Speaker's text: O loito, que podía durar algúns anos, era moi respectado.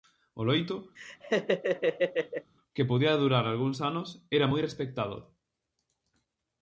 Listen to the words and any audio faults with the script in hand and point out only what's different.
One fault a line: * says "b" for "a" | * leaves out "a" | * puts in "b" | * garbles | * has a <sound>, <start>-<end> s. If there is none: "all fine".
* has a laugh, 1.0-2.5 s